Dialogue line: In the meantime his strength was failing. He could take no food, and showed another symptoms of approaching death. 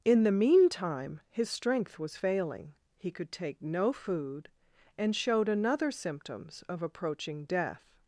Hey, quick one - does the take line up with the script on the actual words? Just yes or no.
yes